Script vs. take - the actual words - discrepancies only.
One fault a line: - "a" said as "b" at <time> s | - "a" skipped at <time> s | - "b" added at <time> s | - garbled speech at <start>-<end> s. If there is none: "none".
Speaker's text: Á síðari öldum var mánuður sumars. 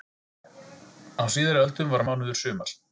none